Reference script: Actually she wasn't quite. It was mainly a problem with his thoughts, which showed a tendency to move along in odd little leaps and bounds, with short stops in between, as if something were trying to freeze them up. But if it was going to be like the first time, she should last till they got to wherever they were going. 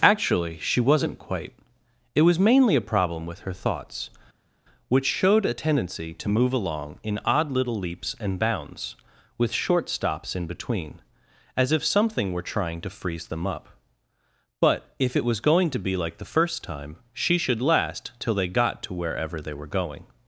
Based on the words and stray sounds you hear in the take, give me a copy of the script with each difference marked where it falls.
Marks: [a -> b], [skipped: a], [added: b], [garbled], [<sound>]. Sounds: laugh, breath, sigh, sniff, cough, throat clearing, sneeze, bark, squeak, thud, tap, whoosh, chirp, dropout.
Actually she wasn't quite. It was mainly a problem with [his -> her] thoughts, which showed a tendency to move along in odd little leaps and bounds, with short stops in between, as if something were trying to freeze them up. But if it was going to be like the first time, she should last till they got to wherever they were going.